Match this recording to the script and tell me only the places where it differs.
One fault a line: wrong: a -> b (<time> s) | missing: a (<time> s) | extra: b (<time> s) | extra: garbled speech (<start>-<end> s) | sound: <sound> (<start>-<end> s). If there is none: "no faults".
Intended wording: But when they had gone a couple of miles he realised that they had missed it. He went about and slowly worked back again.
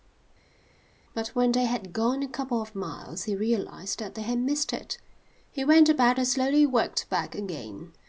no faults